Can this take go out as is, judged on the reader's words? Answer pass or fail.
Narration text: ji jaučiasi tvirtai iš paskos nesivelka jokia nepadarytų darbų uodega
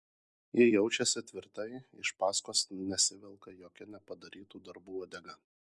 pass